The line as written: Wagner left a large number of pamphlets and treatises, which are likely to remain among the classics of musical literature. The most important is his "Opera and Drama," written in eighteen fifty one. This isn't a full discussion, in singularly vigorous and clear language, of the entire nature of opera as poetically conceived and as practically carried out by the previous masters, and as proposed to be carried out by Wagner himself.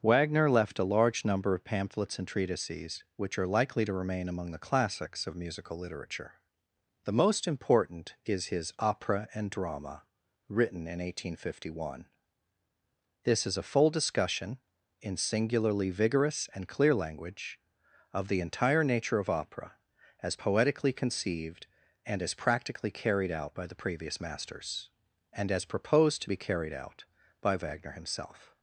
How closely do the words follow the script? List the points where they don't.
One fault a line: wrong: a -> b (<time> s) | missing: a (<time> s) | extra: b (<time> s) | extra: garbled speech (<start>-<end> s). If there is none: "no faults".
wrong: isn't -> is (13.4 s)